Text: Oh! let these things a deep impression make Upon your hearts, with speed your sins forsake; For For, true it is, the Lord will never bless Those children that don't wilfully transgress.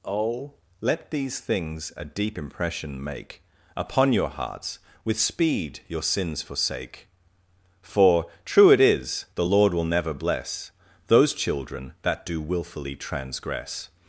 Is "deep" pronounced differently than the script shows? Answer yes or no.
no